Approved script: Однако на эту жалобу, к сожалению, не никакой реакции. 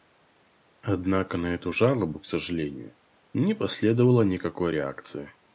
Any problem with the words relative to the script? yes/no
yes